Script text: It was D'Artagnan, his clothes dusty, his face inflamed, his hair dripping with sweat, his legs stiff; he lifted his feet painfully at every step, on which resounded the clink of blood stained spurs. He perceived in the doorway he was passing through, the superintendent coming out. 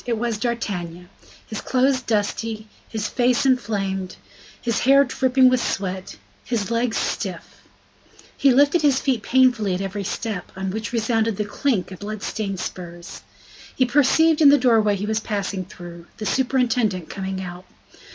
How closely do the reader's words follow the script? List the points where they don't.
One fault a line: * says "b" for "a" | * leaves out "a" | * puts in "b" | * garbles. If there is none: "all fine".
all fine